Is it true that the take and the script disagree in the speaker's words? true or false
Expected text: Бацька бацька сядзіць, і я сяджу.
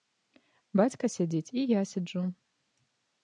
true